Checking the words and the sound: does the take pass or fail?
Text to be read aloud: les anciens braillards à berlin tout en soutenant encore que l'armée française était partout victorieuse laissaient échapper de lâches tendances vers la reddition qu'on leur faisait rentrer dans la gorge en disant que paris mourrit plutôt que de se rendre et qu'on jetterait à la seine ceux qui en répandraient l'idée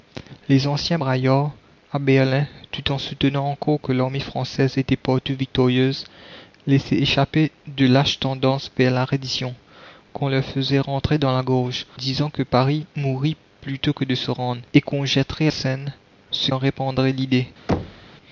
fail